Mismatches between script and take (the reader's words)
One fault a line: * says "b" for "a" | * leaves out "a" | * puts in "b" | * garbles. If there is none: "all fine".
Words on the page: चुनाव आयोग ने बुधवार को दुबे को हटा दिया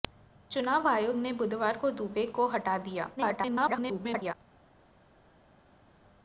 * garbles